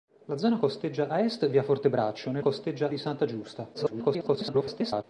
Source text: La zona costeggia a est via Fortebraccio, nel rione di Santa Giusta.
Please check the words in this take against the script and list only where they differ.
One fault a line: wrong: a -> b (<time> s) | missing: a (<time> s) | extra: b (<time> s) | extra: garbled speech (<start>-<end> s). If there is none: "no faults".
wrong: rione -> costeggia (2.4 s)
extra: garbled speech (3.7-5.0 s)